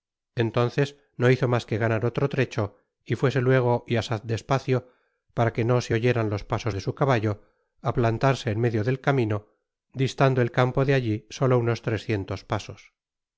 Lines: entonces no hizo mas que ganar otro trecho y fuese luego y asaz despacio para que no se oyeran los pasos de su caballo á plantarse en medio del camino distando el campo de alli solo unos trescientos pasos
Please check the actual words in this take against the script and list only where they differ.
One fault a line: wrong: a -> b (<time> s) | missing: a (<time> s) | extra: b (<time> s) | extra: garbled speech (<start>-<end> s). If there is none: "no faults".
no faults